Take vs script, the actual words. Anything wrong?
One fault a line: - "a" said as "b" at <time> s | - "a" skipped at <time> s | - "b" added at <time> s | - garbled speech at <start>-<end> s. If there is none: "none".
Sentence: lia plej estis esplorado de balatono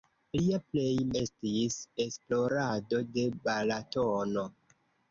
none